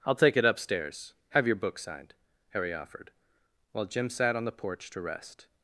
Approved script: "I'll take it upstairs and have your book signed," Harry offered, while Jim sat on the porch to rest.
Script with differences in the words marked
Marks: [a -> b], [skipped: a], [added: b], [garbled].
"I'll take it upstairs [skipped: and] have your book signed," Harry offered, while Jim sat on the porch to rest.